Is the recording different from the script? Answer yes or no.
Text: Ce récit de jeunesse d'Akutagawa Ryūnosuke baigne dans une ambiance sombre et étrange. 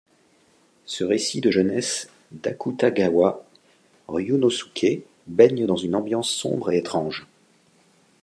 no